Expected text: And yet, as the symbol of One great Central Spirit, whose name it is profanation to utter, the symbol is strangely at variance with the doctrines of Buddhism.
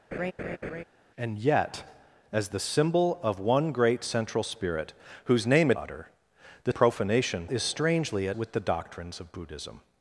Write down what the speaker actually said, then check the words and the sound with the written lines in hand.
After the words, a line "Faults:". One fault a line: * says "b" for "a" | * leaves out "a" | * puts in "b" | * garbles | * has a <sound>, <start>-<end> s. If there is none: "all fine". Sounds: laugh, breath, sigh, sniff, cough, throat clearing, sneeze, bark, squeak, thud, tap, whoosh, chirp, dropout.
And yet, as the symbol of One great Central Spirit, whose name it utter, the profanation is strangely at with the doctrines of Buddhism.
Faults:
* has a laugh, 0.1-0.8 s
* leaves out "is profanation to"
* says "profanation" for "symbol"
* leaves out "variance"